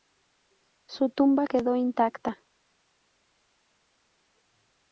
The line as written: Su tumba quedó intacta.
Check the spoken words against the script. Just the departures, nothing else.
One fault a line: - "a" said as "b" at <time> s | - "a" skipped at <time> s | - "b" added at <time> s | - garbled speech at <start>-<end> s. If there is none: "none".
none